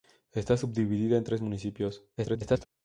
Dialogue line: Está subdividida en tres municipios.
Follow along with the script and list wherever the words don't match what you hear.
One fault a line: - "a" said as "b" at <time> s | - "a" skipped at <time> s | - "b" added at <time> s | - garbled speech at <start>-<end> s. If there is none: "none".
- garbled speech at 2.2-2.7 s